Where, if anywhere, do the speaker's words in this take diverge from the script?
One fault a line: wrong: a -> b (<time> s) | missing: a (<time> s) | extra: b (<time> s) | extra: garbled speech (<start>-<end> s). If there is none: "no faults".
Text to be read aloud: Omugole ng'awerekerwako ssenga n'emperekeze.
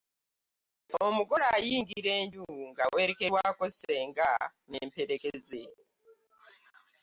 extra: ayingira enju (1.6 s)